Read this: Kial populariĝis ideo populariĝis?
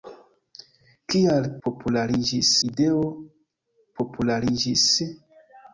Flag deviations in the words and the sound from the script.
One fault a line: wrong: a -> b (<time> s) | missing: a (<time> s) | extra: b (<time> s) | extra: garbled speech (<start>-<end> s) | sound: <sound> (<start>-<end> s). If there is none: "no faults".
no faults